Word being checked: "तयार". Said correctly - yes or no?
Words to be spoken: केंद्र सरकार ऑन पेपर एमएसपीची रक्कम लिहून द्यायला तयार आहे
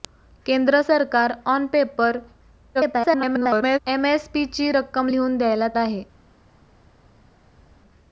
no